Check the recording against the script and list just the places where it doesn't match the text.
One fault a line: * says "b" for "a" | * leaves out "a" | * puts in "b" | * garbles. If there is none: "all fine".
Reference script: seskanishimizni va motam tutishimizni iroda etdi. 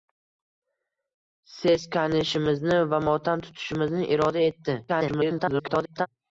* garbles